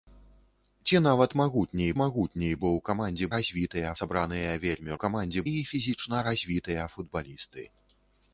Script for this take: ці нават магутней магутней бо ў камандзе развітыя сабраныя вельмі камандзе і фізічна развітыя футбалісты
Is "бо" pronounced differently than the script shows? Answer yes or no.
no